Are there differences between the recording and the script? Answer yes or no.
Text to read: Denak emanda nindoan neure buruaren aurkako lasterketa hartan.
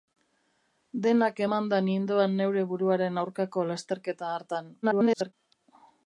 yes